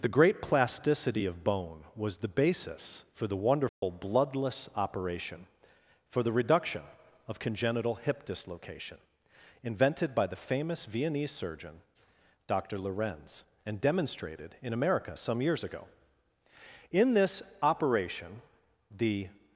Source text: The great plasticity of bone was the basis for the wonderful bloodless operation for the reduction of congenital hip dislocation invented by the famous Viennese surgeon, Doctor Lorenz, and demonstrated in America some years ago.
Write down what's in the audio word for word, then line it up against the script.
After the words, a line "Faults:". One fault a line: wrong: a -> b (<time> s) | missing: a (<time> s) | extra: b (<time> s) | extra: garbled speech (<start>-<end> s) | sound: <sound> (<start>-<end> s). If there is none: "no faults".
The great plasticity of bone was the basis for the wonderful bloodless operation for the reduction of congenital hip dislocation invented by the famous Viennese surgeon, Doctor Lorenz, and demonstrated in America some years ago. In this operation, the
Faults:
sound: dropout (3.7-3.8 s)
extra: In this operation the (16.9 s)